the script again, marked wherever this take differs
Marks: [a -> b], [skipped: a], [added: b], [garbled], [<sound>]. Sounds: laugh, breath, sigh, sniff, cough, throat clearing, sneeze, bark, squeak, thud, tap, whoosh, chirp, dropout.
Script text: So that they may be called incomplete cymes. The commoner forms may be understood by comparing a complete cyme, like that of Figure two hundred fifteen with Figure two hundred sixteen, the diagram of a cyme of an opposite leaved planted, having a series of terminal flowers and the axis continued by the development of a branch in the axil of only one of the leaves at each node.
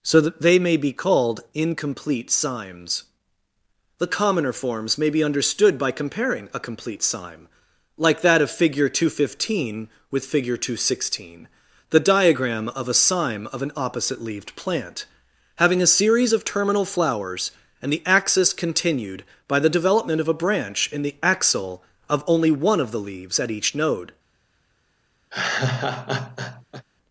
So that they may be called incomplete cymes. The commoner forms may be understood by comparing a complete cyme, like that of Figure two hundred fifteen with Figure two hundred sixteen, the diagram of a cyme of an opposite leaved [planted, -> plant] having a series of terminal flowers and the axis continued by the development of a branch in the axil of only one of the leaves at each node. [laugh]